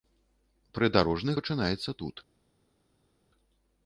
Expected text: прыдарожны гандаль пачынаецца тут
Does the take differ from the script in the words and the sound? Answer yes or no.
yes